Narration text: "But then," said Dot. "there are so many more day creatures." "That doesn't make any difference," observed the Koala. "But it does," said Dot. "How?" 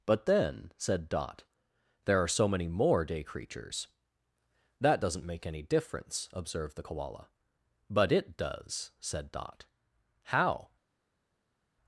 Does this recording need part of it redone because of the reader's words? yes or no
no